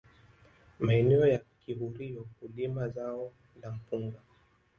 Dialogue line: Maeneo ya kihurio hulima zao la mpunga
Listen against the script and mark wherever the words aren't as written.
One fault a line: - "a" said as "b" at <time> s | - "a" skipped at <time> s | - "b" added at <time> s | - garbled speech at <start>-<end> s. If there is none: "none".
none